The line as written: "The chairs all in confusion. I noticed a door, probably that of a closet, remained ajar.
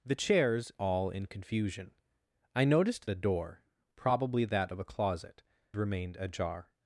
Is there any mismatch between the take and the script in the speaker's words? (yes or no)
no